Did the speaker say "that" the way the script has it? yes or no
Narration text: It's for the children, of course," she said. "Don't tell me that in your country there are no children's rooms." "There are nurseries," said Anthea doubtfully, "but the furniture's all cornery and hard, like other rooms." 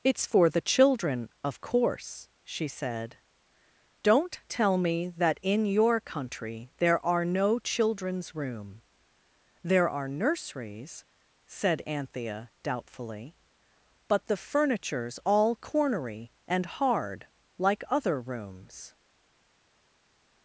yes